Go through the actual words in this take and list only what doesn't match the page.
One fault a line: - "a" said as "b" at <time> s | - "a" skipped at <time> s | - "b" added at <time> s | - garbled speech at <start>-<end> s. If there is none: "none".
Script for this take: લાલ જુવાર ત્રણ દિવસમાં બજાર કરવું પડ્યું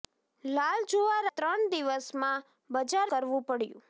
none